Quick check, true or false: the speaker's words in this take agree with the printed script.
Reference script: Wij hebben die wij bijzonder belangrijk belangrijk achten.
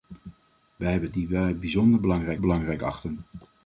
true